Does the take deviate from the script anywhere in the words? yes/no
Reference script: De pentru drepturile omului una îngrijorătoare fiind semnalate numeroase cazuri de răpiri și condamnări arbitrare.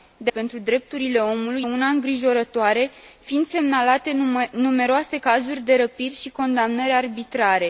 no